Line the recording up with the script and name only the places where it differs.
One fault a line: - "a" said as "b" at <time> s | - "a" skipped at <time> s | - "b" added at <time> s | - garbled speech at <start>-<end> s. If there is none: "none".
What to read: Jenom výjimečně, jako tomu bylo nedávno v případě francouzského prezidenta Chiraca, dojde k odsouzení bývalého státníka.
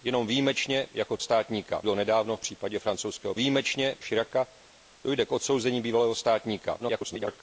- "tomu" said as "státníka" at 1.2 s
- "prezidenta" said as "výjimečně" at 3.4 s
- garbled speech at 6.8-7.4 s